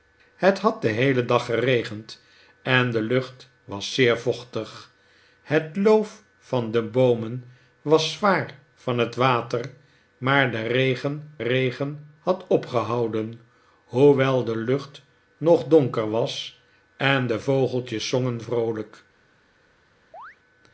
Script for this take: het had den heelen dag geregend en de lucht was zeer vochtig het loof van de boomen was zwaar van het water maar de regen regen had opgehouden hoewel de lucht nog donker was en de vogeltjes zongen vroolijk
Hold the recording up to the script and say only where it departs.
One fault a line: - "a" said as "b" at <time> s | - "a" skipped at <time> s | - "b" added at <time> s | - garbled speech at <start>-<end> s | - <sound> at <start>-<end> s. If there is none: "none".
- chirp at 20.1-20.4 s